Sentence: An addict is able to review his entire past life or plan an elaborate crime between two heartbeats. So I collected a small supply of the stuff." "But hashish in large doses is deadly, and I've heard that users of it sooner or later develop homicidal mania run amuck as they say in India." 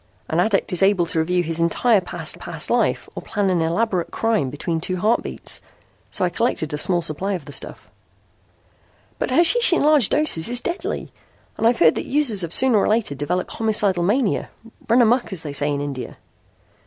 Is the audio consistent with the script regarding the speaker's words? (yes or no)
no